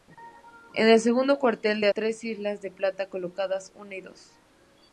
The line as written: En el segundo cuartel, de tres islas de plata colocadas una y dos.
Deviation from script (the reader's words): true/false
false